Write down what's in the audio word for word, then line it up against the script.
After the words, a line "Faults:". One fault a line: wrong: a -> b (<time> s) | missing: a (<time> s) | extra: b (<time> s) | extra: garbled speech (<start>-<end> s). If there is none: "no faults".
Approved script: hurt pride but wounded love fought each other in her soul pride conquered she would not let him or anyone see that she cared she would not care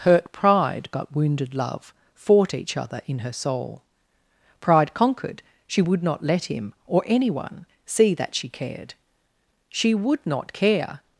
hurt pride but wounded love fought each other in her soul pride conquered she would not let him or anyone see that she cared she would not care
Faults:
no faults